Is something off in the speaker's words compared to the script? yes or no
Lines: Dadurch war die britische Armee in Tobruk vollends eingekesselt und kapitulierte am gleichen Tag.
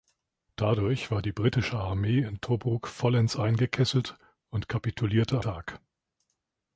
yes